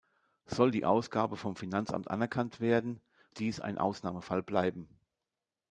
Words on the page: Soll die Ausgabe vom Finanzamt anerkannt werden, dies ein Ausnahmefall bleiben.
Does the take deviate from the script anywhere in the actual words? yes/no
no